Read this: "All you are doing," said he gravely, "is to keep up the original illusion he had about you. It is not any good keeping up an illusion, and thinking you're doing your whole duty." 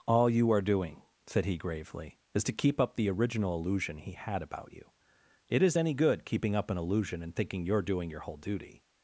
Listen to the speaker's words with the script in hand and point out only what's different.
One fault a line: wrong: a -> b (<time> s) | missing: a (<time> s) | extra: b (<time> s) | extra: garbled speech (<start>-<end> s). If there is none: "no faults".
missing: not (5.8 s)